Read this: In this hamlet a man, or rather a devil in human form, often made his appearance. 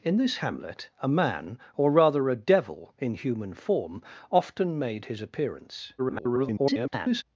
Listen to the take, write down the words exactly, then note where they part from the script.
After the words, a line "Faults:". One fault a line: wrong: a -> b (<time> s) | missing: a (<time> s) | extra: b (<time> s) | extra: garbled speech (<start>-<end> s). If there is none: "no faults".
In this hamlet a man, or rather a devil in human form, often made his appearance. [garbled]
Faults:
extra: garbled speech (6.0-7.2 s)